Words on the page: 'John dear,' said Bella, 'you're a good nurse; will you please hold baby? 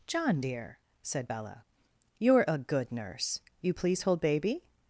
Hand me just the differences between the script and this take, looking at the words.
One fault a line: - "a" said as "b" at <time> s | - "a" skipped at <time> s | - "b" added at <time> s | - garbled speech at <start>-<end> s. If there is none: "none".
- "will" skipped at 3.4 s